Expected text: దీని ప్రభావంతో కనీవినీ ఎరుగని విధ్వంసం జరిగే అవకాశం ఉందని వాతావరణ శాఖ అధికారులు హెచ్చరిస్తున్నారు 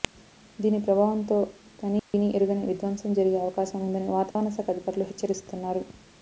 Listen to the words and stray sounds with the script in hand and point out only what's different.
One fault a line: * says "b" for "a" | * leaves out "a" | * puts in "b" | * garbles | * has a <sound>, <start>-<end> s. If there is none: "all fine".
* has a dropout, 2.0-2.1 s
* has a dropout, 4.3-4.4 s